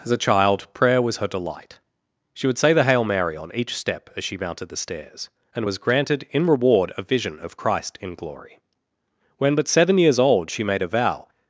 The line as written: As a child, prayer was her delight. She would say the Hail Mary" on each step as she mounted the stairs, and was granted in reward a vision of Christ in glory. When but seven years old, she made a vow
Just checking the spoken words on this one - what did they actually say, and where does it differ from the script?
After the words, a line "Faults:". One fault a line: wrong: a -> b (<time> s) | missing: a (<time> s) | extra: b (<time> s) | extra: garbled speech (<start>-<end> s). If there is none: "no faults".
As a child, prayer was her delight. She would say the Hail Mary" on each step as she mounted the stairs, and was granted in reward a vision of Christ in glory. When but seven years old, she made a vow
Faults:
no faults